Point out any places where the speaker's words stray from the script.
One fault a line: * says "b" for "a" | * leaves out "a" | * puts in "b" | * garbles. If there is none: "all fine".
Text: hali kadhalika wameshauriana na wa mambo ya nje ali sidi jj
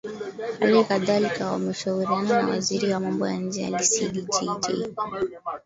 * puts in "waziri"